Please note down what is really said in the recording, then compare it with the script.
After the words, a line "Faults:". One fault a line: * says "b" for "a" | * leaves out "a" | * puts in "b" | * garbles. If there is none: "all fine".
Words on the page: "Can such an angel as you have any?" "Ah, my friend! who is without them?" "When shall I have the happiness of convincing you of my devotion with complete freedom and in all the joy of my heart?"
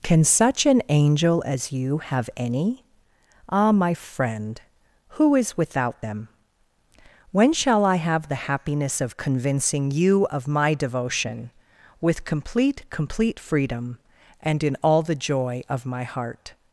"Can such an angel as you have any?" "Ah, my friend! who is without them?" "When shall I have the happiness of convincing you of my devotion with complete complete freedom and in all the joy of my heart?"
Faults:
* puts in "complete"